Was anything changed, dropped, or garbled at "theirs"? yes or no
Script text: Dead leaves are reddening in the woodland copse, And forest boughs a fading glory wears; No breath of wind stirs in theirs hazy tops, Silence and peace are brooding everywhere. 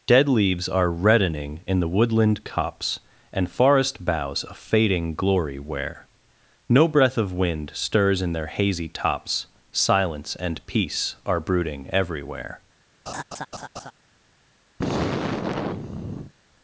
yes